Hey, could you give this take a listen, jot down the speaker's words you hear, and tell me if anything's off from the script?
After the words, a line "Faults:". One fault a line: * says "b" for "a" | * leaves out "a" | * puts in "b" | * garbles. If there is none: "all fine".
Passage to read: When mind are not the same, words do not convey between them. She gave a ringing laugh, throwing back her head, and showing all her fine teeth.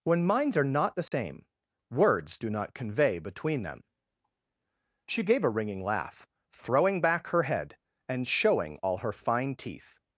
When minds are not the same, words do not convey between them. She gave a ringing laugh, throwing back her head, and showing all her fine teeth.
Faults:
* says "minds" for "mind"